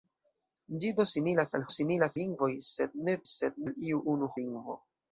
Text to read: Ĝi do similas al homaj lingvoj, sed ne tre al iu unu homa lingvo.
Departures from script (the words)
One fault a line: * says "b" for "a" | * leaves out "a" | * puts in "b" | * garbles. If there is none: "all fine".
* says "similas" for "homaj"
* says "sed" for "tre"
* leaves out "homa"